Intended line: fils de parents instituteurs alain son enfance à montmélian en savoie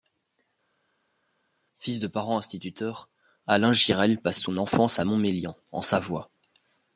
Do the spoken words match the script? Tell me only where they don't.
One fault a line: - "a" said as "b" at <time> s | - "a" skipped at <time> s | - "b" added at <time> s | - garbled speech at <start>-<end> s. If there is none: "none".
- "girel passe" added at 3.7 s